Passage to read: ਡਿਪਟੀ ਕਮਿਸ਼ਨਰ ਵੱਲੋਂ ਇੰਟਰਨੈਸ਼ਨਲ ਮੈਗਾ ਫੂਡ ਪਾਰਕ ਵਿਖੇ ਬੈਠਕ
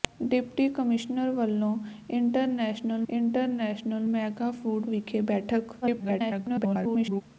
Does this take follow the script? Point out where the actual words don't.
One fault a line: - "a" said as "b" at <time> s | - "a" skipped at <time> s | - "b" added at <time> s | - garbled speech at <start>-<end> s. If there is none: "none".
- "ਇੰਟਰਨੈਸ਼ਨਲ" added at 3.1 s
- "ਪਾਰਕ" skipped at 4.8 s
- garbled speech at 5.8-7.2 s